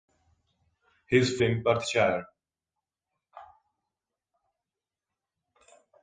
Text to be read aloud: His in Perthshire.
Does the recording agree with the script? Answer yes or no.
yes